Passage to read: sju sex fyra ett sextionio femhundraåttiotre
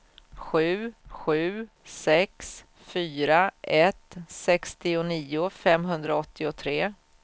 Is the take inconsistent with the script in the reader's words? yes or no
yes